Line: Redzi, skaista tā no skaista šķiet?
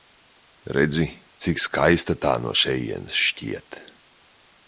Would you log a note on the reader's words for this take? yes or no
yes